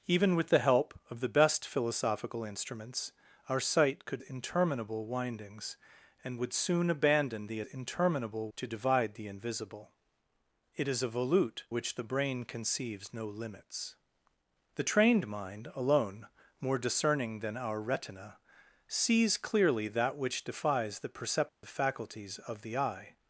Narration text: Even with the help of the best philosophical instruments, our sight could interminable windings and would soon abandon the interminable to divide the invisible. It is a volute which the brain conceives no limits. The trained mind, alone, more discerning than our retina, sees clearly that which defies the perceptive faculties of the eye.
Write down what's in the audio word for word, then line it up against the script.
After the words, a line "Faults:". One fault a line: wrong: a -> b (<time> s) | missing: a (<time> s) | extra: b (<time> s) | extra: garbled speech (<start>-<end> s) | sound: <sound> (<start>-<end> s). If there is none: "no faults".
Even with the help of the best philosophical instruments, our sight could interminable windings and would soon abandon the interminable to divide the invisible. It is a volute which the brain conceives no limits. The trained mind, alone, more discerning than our retina, sees clearly that which defies the perceptive faculties of the eye.
Faults:
sound: dropout (21.5-21.6 s)